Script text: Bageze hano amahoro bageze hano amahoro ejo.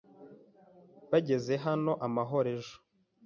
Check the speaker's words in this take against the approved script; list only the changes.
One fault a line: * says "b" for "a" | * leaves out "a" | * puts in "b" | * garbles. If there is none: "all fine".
* leaves out "bageze hano amahoro"